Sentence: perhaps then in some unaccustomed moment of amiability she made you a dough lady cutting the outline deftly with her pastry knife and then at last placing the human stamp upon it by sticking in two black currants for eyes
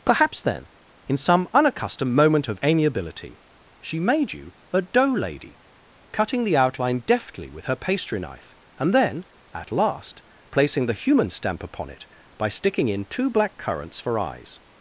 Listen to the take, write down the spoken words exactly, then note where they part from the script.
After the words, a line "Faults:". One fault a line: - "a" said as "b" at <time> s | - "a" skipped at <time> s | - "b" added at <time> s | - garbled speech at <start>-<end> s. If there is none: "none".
perhaps then in some unaccustomed moment of amiability she made you a dough lady cutting the outline deftly with her pastry knife and then at last placing the human stamp upon it by sticking in two black currants for eyes
Faults:
none